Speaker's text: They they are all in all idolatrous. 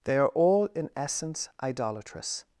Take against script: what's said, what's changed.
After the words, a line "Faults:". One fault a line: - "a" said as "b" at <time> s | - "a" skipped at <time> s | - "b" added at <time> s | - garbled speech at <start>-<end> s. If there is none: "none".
They are all in essence idolatrous.
Faults:
- "they" skipped at 0.2 s
- "all" said as "essence" at 0.9 s